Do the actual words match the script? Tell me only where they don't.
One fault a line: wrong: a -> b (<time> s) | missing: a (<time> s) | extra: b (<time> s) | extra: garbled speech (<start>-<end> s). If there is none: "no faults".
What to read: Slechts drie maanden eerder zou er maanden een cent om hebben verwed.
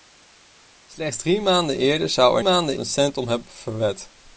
no faults